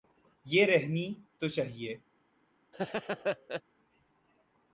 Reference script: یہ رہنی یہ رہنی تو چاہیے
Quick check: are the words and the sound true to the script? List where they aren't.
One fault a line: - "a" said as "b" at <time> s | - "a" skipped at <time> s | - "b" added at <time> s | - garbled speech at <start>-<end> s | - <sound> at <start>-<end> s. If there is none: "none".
- "یہ رہنی" skipped at 1.1 s
- laugh at 2.7-3.6 s